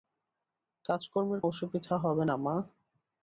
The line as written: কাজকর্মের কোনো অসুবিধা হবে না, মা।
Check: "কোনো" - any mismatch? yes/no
yes